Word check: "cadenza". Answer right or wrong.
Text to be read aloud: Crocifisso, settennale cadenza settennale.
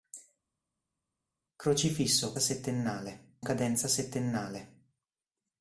right